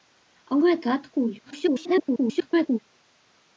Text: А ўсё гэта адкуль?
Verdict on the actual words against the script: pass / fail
fail